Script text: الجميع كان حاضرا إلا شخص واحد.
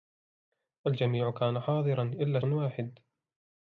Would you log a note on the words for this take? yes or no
yes